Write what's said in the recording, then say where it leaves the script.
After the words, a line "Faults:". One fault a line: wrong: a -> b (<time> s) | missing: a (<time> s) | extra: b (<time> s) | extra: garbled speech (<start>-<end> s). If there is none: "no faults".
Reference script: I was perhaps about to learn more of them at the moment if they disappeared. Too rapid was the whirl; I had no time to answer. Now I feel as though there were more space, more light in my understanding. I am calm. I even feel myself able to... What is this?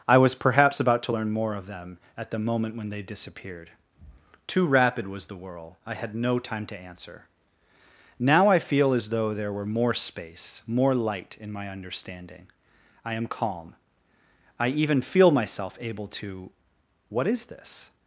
I was perhaps about to learn more of them at the moment when they disappeared. Too rapid was the whirl; I had no time to answer. Now I feel as though there were more space, more light in my understanding. I am calm. I even feel myself able to... What is this?
Faults:
wrong: if -> when (2.8 s)